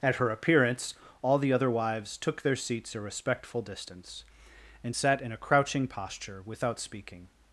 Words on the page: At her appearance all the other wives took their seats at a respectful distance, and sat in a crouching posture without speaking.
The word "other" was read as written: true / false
true